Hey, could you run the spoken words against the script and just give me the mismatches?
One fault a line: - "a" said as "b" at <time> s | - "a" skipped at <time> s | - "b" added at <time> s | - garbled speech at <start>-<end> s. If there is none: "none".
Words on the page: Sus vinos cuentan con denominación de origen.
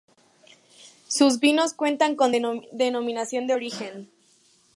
none